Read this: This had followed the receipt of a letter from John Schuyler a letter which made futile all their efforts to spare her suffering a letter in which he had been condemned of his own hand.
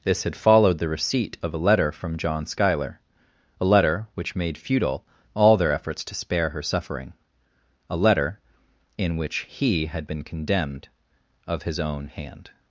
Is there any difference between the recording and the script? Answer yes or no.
no